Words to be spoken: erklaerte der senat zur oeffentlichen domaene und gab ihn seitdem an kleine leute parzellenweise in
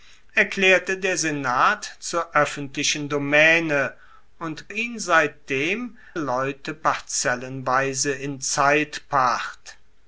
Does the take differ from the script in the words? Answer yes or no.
yes